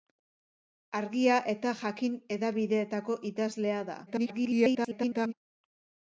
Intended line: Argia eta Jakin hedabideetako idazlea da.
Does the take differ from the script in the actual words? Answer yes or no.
yes